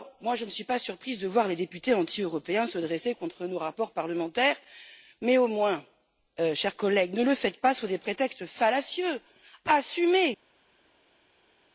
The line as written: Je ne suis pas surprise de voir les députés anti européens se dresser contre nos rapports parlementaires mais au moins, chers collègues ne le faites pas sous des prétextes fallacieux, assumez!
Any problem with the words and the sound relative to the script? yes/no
no